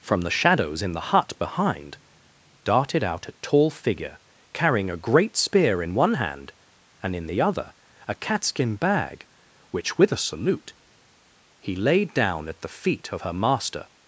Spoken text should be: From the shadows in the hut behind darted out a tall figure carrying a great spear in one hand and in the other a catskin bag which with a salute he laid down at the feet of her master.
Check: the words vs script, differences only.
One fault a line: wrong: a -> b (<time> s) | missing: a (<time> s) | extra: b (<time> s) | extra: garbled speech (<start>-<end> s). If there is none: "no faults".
no faults